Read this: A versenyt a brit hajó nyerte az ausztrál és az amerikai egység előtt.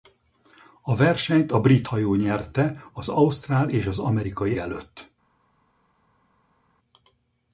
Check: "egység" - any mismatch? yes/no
yes